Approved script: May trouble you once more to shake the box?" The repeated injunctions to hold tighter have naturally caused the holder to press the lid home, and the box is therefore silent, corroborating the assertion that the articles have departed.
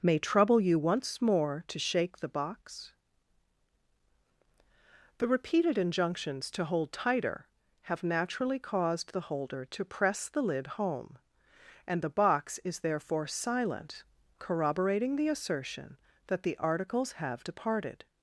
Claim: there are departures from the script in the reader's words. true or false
false